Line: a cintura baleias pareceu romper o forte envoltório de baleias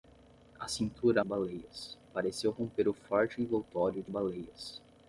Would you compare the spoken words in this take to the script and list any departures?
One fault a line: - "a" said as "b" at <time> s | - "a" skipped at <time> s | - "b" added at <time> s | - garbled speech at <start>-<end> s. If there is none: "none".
none